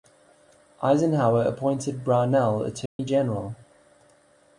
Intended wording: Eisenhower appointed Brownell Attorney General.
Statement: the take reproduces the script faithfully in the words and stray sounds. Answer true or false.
false